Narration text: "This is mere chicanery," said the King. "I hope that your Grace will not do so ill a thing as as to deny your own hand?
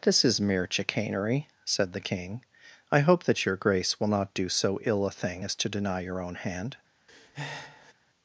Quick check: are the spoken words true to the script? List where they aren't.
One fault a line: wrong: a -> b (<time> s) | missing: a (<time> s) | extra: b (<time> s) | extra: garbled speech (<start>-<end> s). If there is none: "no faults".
missing: as (5.6 s)